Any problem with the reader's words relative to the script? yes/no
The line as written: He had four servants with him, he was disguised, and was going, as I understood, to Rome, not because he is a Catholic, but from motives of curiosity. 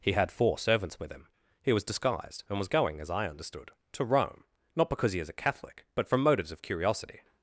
no